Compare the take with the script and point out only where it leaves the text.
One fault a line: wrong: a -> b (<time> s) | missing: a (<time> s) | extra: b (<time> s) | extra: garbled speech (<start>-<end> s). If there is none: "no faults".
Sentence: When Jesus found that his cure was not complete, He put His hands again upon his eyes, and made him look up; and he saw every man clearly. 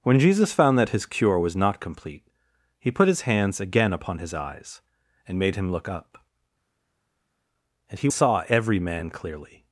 no faults